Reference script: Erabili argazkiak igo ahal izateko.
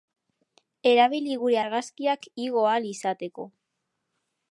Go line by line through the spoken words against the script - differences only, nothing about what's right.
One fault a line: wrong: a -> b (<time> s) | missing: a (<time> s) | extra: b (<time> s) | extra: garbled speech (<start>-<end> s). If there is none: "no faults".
extra: gure (1.4 s)